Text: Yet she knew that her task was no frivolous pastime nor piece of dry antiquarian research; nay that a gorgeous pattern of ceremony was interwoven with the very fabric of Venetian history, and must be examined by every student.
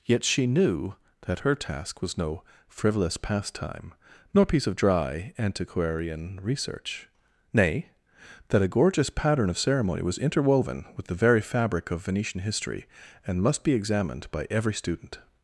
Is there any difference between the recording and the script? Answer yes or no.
no